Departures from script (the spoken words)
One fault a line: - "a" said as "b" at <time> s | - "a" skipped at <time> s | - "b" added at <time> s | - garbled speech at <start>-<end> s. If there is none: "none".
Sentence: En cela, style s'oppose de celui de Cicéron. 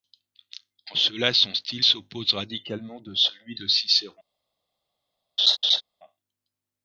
- "son" added at 1.3 s
- "radicalement" added at 2.3 s